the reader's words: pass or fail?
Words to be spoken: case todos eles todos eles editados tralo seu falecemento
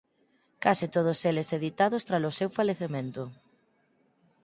fail